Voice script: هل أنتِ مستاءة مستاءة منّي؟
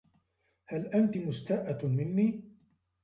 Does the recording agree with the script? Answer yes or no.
no